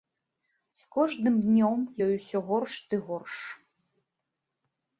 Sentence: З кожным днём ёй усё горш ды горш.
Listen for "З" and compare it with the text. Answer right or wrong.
right